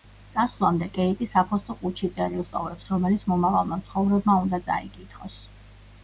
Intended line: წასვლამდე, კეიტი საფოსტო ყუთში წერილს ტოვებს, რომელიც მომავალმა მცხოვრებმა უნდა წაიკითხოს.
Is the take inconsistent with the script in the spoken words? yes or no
no